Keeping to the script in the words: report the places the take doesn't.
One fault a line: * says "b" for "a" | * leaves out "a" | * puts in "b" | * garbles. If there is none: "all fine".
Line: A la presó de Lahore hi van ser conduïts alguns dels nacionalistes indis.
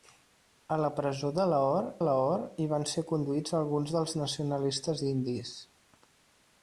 * puts in "Lahore"